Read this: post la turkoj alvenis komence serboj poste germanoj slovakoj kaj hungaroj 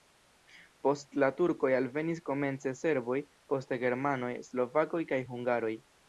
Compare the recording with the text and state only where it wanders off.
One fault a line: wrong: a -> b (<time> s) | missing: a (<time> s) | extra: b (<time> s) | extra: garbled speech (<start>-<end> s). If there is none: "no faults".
no faults